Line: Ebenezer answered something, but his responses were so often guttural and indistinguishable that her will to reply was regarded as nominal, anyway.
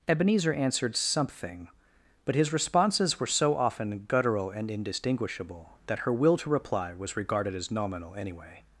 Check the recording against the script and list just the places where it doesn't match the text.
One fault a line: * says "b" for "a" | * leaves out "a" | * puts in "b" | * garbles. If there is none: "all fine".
all fine